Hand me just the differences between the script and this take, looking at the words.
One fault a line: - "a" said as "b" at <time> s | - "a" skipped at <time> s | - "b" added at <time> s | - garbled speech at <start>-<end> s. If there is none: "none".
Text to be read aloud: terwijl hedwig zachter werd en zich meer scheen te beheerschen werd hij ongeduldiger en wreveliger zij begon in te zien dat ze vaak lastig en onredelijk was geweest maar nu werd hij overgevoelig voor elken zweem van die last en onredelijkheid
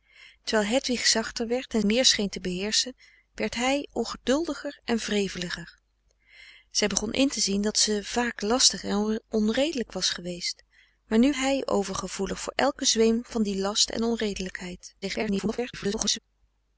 - "zich" skipped at 1.8 s
- "werd" skipped at 11.3 s
- garbled speech at 15.0-16.2 s